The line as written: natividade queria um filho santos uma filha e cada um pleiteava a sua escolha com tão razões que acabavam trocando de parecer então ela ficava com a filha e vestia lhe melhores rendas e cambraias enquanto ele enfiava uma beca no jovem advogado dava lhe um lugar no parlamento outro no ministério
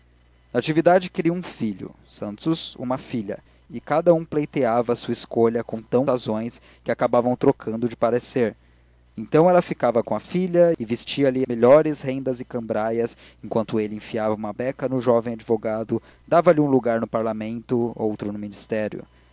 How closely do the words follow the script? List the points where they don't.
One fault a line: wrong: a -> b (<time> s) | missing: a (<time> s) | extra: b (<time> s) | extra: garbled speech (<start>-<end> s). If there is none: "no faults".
no faults